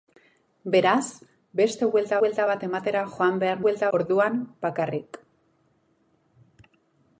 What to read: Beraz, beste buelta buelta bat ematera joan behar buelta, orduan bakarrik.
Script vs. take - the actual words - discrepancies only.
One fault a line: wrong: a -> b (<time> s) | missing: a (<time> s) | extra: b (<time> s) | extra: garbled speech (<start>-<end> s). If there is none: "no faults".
no faults